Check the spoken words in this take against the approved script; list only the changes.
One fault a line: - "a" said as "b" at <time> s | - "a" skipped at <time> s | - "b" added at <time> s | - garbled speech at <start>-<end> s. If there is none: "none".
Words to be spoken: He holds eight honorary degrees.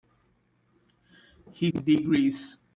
- "holds eight honorary" skipped at 1.7 s